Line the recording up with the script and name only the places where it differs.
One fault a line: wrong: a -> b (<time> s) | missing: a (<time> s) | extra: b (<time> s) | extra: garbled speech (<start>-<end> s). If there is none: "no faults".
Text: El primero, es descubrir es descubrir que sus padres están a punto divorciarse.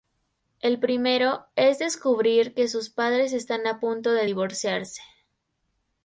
missing: es descubrir (2.5 s)
extra: de (4.1 s)